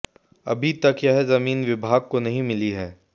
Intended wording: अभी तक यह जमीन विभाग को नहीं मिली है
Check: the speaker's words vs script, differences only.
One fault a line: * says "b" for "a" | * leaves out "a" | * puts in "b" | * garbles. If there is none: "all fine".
all fine